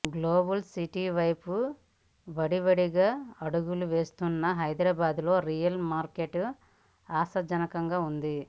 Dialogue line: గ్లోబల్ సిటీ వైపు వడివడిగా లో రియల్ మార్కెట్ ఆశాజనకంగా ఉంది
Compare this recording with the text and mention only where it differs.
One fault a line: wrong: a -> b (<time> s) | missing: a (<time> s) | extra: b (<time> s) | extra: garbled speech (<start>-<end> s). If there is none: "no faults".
extra: అడుగులు వేస్తున్న హైదరాబాద్ (3.4 s)